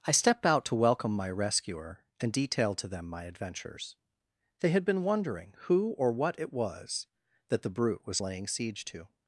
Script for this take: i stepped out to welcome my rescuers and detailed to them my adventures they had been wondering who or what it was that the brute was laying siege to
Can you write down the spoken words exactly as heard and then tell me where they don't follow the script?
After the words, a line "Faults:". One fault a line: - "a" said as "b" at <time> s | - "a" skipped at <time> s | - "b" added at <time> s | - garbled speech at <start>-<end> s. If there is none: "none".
i stepped out to welcome my rescuer and detailed to them my adventures they had been wondering who or what it was that the brute was laying siege to
Faults:
- "rescuers" said as "rescuer" at 1.3 s